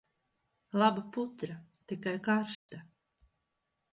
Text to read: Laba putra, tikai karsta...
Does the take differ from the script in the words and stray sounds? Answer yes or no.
yes